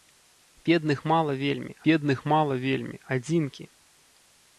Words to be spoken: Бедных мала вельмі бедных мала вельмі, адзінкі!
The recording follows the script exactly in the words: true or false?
true